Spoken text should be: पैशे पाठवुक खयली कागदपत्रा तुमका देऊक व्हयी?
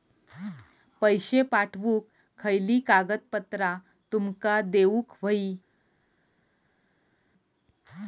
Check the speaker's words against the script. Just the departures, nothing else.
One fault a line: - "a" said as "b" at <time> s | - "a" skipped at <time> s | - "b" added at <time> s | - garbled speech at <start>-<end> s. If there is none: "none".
none